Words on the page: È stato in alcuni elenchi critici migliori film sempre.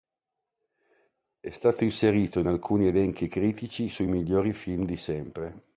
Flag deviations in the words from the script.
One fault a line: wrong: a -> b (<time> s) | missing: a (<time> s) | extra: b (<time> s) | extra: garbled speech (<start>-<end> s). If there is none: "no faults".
extra: inserito (1.8 s)
extra: sui (3.9 s)
extra: di (4.8 s)